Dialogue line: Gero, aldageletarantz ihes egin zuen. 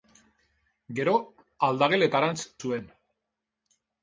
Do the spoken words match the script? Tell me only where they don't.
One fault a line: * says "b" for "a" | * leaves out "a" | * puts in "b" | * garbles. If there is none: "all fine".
* leaves out "ihes egin"